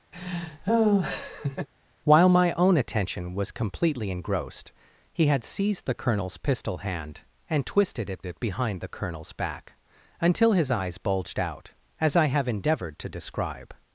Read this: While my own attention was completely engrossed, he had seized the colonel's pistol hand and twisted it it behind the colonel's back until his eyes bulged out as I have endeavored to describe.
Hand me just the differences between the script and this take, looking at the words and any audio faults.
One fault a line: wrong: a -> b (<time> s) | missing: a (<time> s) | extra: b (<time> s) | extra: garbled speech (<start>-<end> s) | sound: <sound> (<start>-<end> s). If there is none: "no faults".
sound: laugh (0.1-1.7 s)